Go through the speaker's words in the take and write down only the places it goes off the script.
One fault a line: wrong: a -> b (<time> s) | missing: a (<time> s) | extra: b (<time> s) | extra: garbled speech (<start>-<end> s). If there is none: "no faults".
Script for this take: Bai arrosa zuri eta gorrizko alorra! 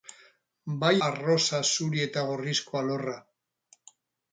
no faults